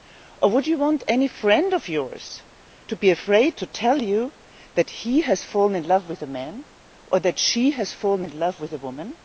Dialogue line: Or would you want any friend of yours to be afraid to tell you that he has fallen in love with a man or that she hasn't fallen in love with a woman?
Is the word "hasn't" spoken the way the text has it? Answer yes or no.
no